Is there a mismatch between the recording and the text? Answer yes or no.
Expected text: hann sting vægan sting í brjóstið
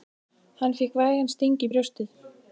yes